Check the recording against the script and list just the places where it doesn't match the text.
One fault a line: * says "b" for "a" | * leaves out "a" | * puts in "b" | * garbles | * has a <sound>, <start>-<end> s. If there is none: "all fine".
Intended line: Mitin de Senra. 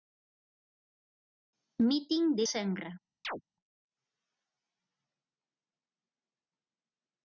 * has a chirp, 3.2-3.4 s